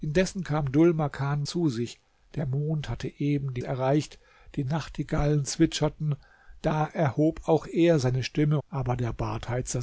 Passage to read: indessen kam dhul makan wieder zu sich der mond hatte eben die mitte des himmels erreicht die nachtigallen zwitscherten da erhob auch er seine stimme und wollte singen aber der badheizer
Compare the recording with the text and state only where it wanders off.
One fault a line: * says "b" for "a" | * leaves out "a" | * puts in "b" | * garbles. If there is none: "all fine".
* leaves out "wieder"
* leaves out "mitte des himmels"
* leaves out "und wollte singen"